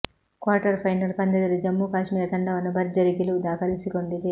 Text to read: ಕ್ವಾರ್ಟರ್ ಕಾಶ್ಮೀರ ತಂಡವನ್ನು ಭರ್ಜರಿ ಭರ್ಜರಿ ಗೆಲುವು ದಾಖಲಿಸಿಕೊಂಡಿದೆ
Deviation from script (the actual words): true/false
true